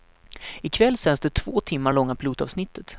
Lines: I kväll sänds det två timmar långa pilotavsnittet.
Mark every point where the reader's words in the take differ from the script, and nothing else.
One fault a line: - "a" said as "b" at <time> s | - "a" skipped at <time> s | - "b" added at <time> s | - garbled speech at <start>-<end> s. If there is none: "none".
none